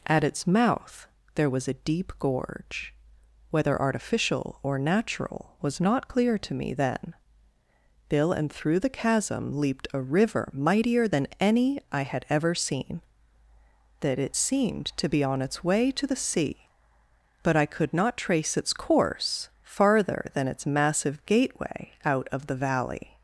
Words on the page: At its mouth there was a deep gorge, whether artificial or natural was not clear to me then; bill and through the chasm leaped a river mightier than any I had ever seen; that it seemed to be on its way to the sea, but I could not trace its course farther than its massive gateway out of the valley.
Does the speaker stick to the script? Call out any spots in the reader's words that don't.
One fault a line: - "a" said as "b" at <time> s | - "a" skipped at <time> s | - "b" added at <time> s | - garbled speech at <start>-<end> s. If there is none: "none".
none